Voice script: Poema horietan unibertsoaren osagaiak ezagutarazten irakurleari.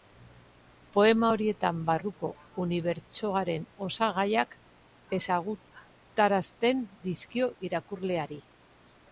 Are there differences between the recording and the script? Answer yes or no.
yes